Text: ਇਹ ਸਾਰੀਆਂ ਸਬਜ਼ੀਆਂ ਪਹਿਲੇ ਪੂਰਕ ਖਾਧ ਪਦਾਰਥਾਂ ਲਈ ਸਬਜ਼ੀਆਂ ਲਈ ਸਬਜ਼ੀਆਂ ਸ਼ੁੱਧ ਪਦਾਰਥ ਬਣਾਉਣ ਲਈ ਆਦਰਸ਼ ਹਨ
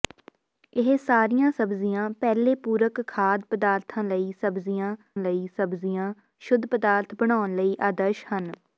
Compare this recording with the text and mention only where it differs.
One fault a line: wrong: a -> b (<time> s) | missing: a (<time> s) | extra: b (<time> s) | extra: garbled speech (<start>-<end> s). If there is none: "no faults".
no faults